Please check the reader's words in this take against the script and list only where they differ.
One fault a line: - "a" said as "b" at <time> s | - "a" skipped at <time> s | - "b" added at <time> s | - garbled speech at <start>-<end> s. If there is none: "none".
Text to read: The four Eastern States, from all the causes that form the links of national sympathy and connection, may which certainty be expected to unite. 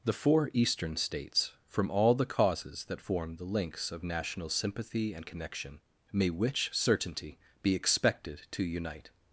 none